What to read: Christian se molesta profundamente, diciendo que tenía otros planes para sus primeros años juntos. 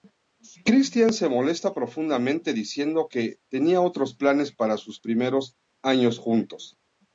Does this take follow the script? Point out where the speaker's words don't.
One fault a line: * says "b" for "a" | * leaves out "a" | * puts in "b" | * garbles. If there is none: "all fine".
all fine